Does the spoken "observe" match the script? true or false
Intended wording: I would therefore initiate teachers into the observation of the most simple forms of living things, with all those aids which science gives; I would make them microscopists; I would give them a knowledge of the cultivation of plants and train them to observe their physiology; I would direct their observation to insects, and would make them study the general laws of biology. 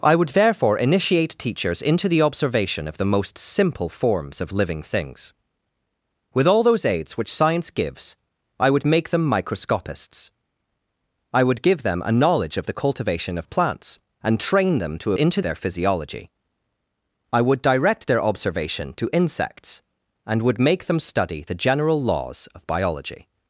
false